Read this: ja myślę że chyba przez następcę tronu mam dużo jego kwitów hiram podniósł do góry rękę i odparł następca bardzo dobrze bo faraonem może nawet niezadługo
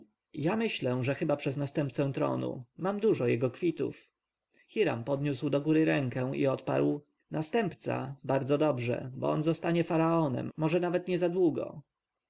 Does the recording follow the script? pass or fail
fail